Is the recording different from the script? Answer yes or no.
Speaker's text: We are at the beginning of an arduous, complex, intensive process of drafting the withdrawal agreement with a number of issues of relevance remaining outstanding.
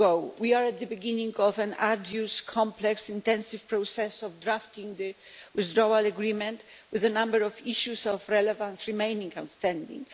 no